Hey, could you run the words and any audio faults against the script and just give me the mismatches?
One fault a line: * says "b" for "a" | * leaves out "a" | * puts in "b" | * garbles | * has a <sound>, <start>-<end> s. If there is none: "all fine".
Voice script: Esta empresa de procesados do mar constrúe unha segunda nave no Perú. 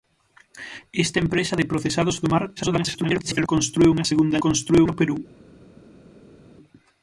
* garbles
* says "constrúe" for "nave"